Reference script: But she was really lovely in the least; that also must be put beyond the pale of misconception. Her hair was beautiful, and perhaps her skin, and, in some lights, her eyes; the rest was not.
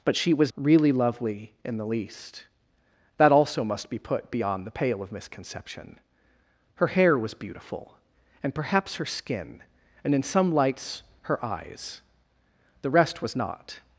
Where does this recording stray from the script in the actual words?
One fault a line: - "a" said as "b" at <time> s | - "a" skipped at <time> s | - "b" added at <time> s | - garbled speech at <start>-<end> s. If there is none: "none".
none